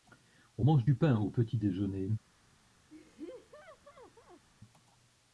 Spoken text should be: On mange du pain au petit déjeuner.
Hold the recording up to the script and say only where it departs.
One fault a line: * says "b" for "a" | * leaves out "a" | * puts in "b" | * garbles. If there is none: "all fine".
all fine